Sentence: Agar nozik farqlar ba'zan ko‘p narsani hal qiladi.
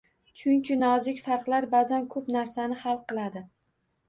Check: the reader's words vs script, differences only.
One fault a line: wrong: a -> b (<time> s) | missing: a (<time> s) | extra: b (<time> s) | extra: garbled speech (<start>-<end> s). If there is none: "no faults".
wrong: Agar -> Chunki (0.4 s)